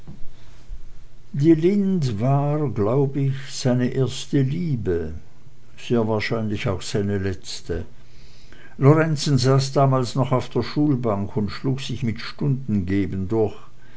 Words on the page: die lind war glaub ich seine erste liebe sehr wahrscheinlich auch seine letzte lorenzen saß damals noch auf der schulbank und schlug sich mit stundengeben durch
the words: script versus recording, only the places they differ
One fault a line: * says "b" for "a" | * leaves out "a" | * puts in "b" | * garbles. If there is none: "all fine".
all fine